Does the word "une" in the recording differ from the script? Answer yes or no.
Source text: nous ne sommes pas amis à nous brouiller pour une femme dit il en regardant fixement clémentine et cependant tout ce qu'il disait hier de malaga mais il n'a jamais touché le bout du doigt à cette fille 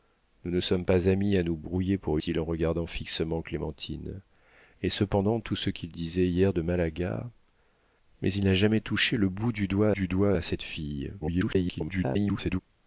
yes